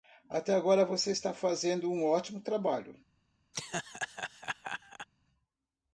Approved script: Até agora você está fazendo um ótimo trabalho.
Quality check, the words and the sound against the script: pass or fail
fail